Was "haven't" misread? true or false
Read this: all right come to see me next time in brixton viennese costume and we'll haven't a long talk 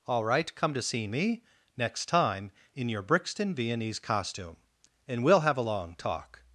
true